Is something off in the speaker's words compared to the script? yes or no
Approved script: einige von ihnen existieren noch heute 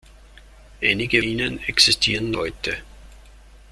yes